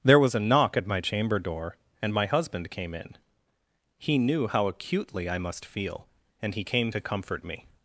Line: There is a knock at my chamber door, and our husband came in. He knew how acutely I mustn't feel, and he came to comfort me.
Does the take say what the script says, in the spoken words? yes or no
no